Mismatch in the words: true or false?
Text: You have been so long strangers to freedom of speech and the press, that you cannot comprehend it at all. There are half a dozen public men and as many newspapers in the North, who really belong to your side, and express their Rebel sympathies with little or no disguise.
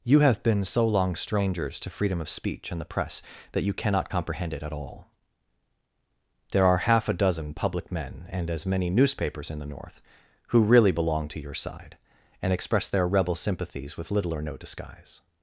false